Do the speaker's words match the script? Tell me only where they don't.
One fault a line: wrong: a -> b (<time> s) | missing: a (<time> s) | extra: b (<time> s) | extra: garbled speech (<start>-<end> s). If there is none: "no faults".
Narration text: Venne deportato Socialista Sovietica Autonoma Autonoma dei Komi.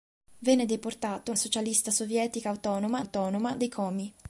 no faults